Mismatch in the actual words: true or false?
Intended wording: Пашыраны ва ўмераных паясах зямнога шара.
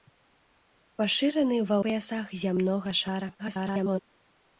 true